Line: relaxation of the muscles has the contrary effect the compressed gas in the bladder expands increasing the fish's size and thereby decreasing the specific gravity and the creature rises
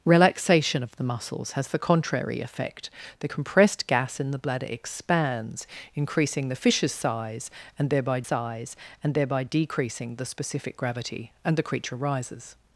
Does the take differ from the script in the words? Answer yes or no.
yes